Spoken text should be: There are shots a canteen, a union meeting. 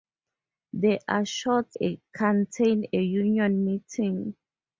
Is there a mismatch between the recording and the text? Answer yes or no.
no